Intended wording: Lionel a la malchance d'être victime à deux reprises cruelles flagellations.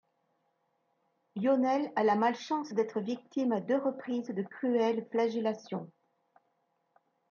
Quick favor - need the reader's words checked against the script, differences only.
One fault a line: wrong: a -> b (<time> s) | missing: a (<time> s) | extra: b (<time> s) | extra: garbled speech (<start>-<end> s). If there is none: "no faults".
extra: de (4.3 s)